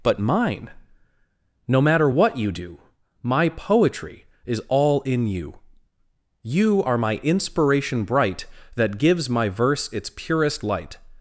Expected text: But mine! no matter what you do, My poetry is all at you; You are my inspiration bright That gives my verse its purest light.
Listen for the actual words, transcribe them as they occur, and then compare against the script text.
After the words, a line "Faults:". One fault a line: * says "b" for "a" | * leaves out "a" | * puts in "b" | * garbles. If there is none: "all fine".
But mine! no matter what you do, My poetry is all in you; You are my inspiration bright That gives my verse its purest light.
Faults:
* says "in" for "at"